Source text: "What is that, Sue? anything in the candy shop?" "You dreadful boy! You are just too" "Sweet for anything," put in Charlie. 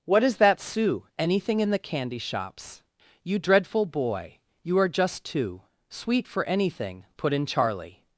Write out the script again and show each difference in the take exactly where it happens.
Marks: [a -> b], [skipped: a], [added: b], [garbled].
"What is that, Sue? anything in the candy [shop?" -> shops] "You dreadful boy! You are just too" "Sweet for anything," put in Charlie.